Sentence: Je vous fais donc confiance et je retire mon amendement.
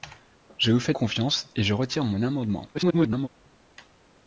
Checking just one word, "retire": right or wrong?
right